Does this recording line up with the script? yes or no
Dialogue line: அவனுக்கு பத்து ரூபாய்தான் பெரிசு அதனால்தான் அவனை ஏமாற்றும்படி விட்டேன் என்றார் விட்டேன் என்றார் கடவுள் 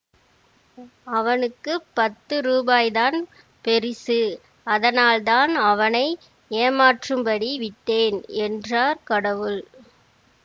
no